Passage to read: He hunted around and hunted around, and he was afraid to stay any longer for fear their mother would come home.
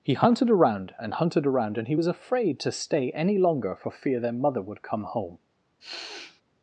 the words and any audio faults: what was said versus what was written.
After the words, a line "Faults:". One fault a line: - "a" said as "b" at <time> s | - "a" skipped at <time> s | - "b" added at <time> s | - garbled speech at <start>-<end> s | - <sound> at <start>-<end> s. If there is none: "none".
He hunted around and hunted around, and he was afraid to stay any longer for fear their mother would come home.
Faults:
- sniff at 5.8-6.4 s